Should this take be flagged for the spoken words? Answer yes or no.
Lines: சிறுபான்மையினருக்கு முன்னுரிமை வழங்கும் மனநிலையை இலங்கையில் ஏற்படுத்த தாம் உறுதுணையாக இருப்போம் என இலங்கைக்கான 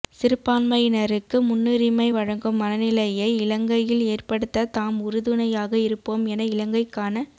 no